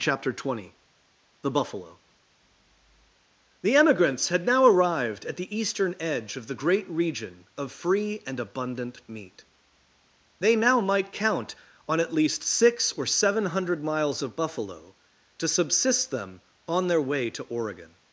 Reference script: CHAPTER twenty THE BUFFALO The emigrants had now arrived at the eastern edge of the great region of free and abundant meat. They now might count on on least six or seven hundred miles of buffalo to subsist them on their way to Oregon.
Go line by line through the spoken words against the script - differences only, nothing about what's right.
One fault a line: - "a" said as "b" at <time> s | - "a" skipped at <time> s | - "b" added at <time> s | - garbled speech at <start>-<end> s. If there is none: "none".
- "on" said as "at" at 12.0 s